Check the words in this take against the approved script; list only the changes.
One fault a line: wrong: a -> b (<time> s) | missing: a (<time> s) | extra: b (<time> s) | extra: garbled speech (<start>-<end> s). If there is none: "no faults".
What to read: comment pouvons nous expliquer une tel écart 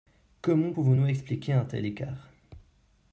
wrong: une -> un (1.5 s)